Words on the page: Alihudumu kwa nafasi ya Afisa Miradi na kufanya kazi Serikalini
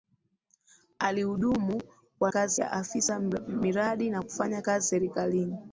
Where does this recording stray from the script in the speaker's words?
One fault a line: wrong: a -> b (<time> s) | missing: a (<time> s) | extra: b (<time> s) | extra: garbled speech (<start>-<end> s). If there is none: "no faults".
wrong: nafasi -> kazi (2.3 s)